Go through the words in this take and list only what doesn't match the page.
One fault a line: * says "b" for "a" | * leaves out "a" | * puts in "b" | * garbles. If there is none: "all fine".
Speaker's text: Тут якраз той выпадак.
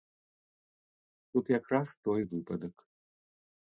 all fine